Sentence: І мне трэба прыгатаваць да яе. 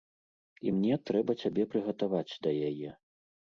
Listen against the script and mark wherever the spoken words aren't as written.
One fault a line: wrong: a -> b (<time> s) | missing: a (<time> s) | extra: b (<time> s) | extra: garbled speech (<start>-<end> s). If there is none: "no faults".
extra: цябе (1.4 s)